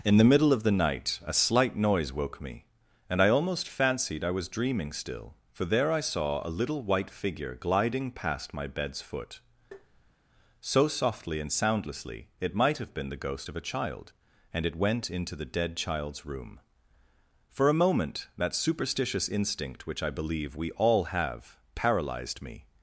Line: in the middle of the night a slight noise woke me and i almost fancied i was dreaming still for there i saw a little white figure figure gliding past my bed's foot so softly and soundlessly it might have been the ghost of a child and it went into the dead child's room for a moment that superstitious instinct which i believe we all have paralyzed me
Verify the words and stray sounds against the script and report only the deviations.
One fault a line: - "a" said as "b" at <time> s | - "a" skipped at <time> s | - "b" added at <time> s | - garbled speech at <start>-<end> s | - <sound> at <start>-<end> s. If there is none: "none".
- "figure" skipped at 7.5 s
- tap at 9.7-10.2 s